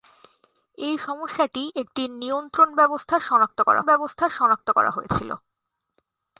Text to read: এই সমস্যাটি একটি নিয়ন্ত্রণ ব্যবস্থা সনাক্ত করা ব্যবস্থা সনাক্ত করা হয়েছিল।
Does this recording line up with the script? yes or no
yes